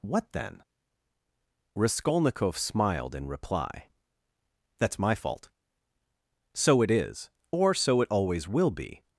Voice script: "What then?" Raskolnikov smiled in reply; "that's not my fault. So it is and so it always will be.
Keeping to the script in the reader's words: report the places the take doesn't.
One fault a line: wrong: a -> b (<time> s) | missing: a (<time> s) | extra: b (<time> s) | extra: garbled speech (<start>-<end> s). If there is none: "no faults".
missing: not (5.0 s)
wrong: and -> or (7.5 s)